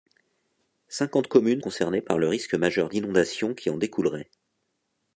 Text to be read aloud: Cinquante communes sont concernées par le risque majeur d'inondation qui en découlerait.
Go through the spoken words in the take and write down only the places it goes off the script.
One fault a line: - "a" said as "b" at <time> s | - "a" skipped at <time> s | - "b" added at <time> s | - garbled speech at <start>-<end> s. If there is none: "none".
- "sont" skipped at 1.6 s